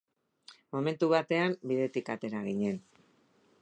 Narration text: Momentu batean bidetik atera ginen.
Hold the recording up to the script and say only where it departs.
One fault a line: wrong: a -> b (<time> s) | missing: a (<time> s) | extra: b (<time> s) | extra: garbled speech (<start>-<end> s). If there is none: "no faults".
no faults